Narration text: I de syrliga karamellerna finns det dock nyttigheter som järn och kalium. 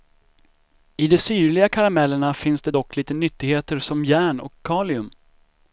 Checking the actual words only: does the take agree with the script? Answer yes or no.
no